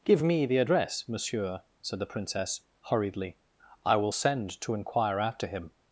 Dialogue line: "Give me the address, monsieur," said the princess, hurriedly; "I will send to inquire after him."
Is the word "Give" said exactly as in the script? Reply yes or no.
yes